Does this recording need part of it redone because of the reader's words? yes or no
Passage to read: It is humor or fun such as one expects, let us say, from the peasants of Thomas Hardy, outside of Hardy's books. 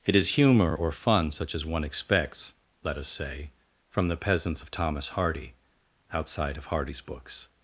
no